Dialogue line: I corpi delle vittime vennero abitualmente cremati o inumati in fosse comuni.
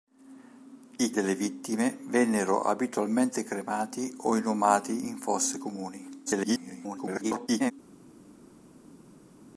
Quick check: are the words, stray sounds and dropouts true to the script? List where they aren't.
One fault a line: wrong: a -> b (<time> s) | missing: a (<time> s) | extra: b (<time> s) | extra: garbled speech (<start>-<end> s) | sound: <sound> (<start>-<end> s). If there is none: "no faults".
missing: corpi (1.1 s)
extra: garbled speech (6.3-7.7 s)